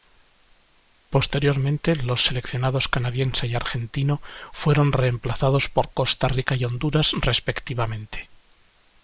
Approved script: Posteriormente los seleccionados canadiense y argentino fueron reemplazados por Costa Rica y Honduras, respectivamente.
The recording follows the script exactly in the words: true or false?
true